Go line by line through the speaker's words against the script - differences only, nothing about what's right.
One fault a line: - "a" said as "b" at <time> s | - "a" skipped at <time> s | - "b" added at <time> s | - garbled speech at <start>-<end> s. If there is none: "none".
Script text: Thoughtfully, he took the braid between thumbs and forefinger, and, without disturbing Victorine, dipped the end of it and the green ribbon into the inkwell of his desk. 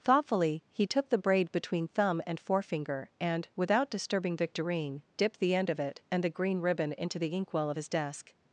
- "thumbs" said as "thumb" at 1.9 s